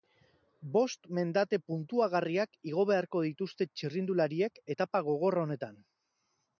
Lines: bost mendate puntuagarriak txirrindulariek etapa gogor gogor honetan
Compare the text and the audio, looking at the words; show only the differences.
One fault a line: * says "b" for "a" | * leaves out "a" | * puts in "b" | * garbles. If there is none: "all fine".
* puts in "igo beharko dituzte"
* leaves out "gogor"